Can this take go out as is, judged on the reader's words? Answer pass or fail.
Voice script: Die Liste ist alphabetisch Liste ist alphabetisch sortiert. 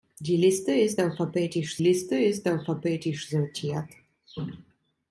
pass